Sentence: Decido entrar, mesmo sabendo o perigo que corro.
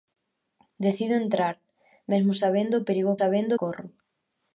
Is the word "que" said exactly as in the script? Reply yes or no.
no